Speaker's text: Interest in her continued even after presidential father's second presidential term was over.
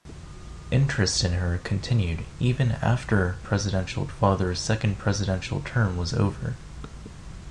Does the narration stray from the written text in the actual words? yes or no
no